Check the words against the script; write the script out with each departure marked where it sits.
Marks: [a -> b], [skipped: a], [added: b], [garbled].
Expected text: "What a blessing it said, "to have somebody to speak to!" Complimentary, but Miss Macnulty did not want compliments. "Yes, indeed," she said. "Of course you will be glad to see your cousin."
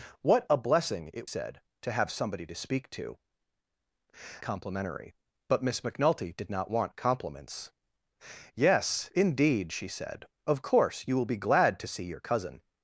"What a blessing it said, "to have somebody to speak to!" Complimentary, but Miss Macnulty did not want compliments. "Yes, indeed," she said. "Of course you will be glad to see your cousin."